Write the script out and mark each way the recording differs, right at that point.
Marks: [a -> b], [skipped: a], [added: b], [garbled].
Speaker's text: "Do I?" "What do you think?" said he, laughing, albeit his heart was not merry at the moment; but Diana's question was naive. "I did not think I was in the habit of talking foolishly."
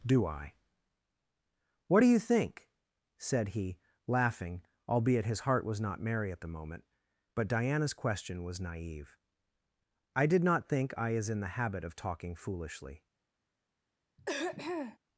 "Do I?" "What do you think?" said he, laughing, albeit his heart was not merry at the moment; but Diana's question was naive. "I did not think I [was -> is] in the habit of talking foolishly."